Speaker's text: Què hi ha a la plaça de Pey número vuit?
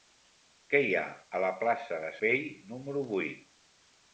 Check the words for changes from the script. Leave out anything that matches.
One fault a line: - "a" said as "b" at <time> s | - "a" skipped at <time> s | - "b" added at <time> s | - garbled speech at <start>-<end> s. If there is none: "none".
none